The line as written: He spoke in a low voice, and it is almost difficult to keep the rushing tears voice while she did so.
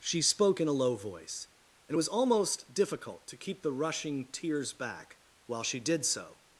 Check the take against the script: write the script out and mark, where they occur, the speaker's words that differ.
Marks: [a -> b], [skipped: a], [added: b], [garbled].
[He -> She] spoke in a low voice, and it [is -> was] almost difficult to keep the rushing tears [voice -> back] while she did so.